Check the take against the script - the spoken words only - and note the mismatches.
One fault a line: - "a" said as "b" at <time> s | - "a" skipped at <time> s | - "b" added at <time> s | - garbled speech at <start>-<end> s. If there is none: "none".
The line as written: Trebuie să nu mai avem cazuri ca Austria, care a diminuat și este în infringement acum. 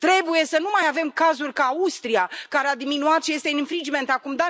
none